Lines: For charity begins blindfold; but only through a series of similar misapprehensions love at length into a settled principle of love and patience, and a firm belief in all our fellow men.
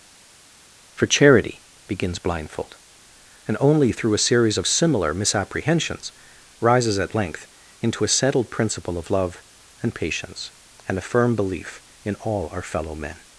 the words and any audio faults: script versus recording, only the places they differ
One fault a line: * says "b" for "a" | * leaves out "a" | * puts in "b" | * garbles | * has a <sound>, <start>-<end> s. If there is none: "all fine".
* says "and" for "but"
* says "rises" for "love"